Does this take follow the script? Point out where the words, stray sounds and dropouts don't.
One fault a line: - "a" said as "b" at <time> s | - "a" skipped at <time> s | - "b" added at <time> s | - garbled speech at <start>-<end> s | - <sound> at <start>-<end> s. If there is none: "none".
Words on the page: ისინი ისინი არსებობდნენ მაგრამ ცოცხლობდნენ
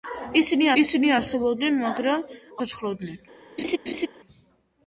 - laugh at 3.6-4.1 s